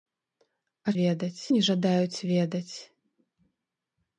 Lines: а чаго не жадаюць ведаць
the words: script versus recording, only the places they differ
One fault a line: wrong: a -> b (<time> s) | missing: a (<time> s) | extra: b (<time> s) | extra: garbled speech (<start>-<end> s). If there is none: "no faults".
wrong: чаго -> ведаць (1.0 s)